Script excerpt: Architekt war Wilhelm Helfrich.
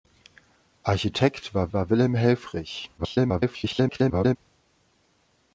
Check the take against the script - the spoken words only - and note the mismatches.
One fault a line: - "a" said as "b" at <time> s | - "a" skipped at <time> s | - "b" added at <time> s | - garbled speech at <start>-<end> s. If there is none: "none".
- "war" added at 1.7 s
- garbled speech at 3.0-4.4 s